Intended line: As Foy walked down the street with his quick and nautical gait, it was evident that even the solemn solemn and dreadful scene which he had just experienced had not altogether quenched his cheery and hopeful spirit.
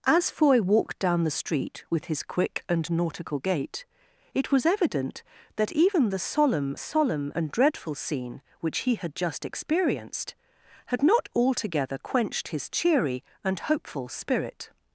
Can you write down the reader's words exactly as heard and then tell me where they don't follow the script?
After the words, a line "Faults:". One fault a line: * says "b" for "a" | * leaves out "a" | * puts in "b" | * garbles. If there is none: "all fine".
As Foy walked down the street with his quick and nautical gait, it was evident that even the solemn solemn and dreadful scene which he had just experienced had not altogether quenched his cheery and hopeful spirit.
Faults:
all fine